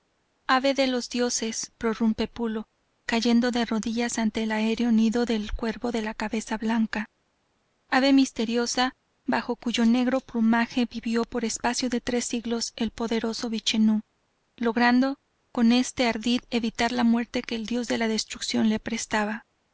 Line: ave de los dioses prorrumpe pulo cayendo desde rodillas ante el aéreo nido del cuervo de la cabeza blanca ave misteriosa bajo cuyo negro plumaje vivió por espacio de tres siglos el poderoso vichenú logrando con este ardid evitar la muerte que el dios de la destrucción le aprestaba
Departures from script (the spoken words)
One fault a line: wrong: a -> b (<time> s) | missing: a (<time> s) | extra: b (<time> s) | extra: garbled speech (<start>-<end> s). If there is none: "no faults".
wrong: desde -> de (3.5 s)